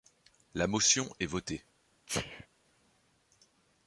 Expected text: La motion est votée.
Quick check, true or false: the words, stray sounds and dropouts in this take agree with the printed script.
false